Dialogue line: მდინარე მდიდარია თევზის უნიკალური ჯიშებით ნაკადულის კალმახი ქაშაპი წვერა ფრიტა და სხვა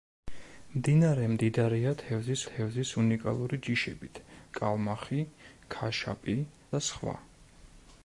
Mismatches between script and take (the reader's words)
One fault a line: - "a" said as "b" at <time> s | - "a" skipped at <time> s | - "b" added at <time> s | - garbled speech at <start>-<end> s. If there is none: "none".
- "თევზის" added at 2.5 s
- "ნაკადულის" skipped at 4.2 s
- "წვერა ფრიტა" skipped at 6.4 s